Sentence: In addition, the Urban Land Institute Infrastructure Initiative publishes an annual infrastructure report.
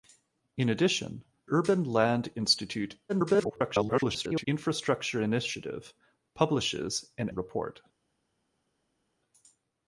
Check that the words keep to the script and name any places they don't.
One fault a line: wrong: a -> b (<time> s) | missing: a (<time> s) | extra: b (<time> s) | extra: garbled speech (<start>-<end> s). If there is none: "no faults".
missing: the (1.2 s)
extra: garbled speech (3.1-4.5 s)
missing: annual infrastructure (7.3 s)